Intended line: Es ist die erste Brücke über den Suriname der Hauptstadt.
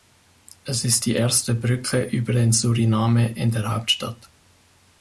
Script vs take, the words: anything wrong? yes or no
yes